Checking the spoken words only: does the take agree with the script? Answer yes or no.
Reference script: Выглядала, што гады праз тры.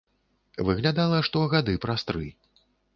yes